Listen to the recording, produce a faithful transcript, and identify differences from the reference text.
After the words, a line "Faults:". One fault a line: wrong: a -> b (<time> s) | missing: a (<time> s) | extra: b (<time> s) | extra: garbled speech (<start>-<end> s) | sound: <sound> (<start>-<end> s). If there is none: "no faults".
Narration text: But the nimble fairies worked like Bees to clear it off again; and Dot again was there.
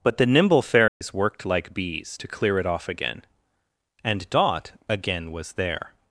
But the nimble fairies worked like Bees to clear it off again; and Dot again was there.
Faults:
sound: dropout (0.9-1.0 s)